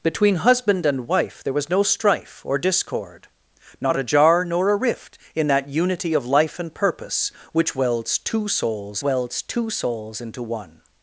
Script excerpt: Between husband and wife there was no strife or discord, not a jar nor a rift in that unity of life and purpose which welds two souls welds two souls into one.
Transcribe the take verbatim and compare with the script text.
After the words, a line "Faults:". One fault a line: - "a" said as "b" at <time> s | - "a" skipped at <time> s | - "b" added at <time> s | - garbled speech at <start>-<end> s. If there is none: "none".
Between husband and wife there was no strife or discord, not a jar nor a rift in that unity of life and purpose which welds two souls welds two souls into one.
Faults:
none